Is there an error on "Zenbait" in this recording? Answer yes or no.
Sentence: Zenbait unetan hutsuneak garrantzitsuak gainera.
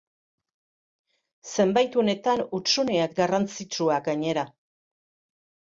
no